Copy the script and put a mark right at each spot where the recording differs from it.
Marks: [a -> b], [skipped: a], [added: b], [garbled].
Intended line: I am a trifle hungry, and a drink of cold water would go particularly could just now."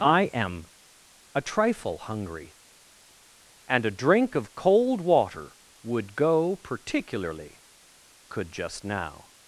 I am a trifle hungry, and a drink of cold water would go particularly could just now."